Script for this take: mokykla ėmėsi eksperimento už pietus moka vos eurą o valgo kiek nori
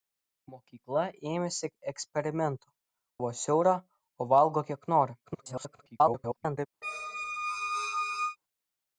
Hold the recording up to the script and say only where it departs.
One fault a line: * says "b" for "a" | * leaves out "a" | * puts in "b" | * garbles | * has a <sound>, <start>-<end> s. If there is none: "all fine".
* leaves out "už pietus moka"
* garbles
* has a squeak, 6.8-8.4 s